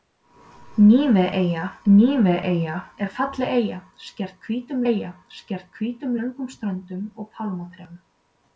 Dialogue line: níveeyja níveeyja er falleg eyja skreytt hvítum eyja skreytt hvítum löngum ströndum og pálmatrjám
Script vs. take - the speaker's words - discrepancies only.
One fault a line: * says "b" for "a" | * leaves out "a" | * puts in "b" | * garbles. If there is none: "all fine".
all fine